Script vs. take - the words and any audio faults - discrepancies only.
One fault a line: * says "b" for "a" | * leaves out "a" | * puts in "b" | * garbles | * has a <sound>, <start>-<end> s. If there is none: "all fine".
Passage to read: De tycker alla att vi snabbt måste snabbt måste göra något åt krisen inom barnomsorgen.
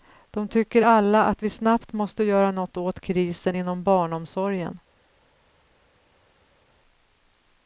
* leaves out "snabbt måste"